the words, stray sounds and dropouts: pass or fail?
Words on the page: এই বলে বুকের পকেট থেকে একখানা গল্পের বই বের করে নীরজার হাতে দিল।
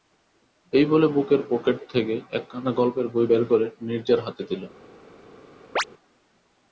fail